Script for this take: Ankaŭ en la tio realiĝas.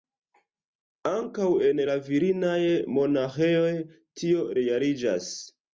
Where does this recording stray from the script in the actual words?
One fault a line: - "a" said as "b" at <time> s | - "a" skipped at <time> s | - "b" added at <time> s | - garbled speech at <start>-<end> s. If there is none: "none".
- "virinaj monaĥejoj" added at 2.1 s